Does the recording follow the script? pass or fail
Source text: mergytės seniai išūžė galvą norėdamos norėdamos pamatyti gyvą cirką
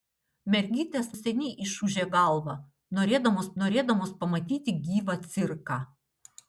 pass